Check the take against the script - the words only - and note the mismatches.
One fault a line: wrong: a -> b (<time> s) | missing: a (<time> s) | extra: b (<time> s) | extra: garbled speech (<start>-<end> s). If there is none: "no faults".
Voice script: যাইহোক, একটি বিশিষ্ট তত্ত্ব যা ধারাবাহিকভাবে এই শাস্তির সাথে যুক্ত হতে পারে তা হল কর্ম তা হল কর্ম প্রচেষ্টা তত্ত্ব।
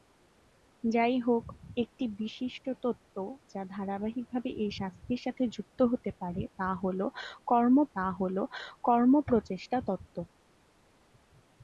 no faults